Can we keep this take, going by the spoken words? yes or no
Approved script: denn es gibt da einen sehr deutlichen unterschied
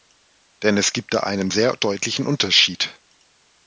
yes